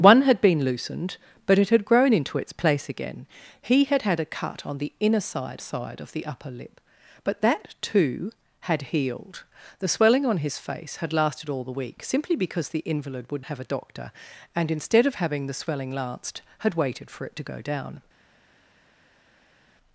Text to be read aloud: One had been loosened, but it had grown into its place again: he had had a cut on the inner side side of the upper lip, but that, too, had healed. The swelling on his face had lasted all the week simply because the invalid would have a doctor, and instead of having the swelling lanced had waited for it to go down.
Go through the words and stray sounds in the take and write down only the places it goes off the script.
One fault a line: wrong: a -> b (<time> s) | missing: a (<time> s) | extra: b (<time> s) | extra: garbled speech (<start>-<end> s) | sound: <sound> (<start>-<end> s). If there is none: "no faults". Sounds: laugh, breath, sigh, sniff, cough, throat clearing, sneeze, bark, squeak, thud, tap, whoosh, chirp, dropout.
no faults